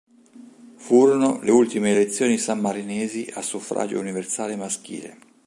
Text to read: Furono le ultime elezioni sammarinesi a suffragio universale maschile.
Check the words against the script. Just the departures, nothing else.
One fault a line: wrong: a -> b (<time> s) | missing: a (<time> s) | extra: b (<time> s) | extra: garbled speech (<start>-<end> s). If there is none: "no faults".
no faults